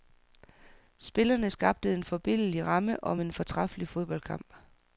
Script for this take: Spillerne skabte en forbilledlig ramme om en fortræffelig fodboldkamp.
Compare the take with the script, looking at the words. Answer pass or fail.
pass